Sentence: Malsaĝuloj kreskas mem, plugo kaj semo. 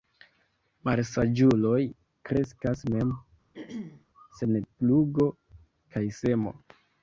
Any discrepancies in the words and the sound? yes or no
yes